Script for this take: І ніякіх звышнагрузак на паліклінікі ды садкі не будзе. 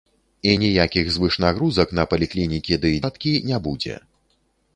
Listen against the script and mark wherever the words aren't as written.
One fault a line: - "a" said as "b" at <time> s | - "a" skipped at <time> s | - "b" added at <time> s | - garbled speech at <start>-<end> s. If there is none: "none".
none